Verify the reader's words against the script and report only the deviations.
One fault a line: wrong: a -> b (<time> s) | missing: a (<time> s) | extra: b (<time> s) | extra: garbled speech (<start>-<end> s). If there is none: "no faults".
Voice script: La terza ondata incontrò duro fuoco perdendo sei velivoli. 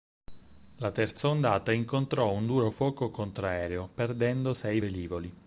extra: un (2.3 s)
extra: contraereo (3.1 s)